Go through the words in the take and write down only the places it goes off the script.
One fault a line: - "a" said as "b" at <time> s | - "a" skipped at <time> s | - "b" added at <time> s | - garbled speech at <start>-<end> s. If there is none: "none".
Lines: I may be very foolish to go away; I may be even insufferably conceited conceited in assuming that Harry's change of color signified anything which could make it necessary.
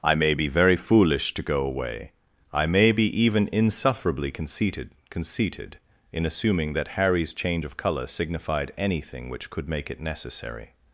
none